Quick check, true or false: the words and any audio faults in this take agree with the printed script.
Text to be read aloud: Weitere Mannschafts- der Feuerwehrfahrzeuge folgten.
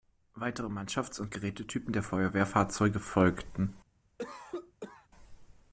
false